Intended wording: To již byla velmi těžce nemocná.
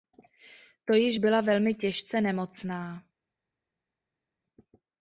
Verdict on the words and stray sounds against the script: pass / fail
pass